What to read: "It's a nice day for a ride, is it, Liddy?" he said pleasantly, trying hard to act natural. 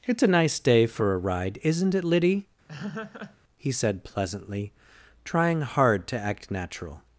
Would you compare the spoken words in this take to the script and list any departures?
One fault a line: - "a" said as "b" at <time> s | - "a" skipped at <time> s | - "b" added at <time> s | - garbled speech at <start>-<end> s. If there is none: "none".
- "is" said as "isn't" at 1.6 s